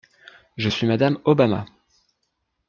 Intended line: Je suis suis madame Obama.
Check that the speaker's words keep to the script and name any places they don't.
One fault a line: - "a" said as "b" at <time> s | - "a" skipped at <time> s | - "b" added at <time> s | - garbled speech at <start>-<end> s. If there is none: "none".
- "suis" skipped at 0.9 s